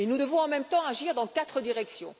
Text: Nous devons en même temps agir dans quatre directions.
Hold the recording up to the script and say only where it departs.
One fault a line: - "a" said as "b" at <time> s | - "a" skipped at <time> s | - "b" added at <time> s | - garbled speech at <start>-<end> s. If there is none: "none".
none